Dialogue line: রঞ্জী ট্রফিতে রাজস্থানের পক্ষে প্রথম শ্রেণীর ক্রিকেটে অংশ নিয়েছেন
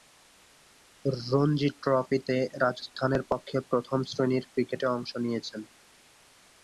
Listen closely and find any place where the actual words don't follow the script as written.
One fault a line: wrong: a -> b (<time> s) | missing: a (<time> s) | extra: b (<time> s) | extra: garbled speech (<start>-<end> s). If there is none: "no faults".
no faults